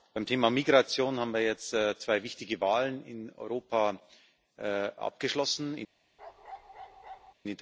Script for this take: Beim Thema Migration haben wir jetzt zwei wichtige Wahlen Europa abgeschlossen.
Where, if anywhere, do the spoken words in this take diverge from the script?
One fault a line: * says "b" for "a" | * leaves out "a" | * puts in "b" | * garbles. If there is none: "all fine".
* puts in "in"